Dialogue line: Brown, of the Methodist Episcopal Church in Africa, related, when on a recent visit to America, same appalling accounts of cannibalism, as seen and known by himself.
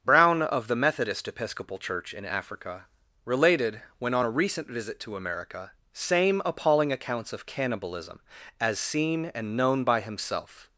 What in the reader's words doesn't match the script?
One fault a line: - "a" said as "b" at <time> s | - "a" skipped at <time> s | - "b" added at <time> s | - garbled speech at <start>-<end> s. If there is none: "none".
none